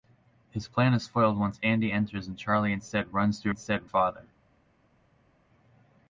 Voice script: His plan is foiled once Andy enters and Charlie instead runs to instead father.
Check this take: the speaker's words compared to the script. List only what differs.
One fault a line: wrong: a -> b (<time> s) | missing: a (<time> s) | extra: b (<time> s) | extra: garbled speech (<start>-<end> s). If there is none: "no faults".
no faults